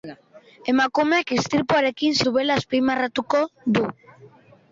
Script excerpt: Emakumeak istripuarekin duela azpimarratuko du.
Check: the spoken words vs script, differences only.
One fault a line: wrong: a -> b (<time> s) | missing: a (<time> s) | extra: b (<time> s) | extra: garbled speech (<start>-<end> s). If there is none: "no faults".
no faults